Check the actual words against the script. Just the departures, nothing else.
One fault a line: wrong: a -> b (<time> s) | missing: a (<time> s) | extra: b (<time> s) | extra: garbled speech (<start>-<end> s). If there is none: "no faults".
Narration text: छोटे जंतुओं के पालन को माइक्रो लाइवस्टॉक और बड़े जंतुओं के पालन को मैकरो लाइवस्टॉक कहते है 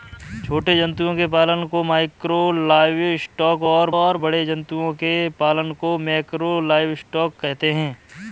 extra: और (4.0 s)